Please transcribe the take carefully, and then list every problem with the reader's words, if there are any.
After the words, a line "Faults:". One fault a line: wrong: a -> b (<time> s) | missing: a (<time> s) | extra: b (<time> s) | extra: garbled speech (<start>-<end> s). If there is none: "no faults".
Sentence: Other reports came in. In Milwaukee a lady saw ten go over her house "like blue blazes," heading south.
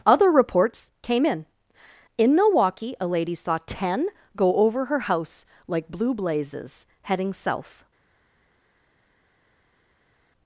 Other reports came in. In Milwaukee a lady saw ten go over her house "like blue blazes," heading south.
Faults:
no faults